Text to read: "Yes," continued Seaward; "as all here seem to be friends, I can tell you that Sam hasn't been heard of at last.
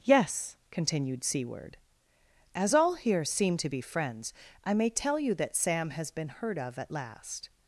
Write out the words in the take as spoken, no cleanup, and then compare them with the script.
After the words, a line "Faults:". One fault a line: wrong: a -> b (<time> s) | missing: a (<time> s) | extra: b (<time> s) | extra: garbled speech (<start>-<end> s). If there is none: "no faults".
"Yes," continued Seaward; "as all here seem to be friends, I may tell you that Sam has been heard of at last.
Faults:
wrong: can -> may (4.7 s)
wrong: hasn't -> has (5.9 s)